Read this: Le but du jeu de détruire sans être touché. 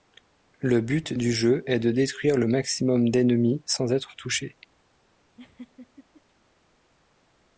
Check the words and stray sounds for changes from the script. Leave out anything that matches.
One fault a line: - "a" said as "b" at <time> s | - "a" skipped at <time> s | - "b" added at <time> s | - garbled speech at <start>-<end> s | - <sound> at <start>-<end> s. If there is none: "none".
- "est" added at 1.7 s
- "le maximum d'ennemis" added at 2.4 s
- laugh at 5.4-6.2 s